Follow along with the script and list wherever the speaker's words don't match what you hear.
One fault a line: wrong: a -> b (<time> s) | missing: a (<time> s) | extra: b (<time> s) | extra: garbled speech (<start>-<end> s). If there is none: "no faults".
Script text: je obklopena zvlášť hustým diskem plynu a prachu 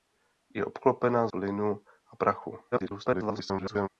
missing: zvlášť hustým diskem (1.3 s)
extra: garbled speech (2.7-3.9 s)